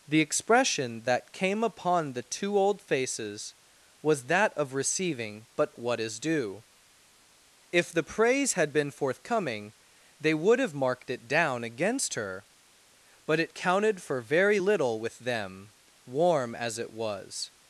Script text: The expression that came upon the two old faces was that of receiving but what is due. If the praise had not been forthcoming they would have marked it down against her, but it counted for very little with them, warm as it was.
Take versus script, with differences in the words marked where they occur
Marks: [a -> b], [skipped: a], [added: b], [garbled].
The expression that came upon the two old faces was that of receiving but what is due. If the praise had [skipped: not] been forthcoming they would have marked it down against her, but it counted for very little with them, warm as it was.